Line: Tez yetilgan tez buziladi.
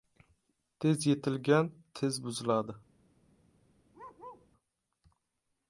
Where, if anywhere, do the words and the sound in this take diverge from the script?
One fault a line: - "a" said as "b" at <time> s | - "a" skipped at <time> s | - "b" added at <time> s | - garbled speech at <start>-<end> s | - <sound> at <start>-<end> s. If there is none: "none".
- bark at 3.9-4.5 s